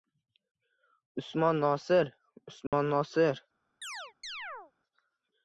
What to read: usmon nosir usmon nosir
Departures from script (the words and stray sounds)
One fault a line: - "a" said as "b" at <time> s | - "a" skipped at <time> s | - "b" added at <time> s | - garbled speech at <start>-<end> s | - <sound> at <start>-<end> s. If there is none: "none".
- dropout at 2.7-2.7 s
- chirp at 3.8-4.7 s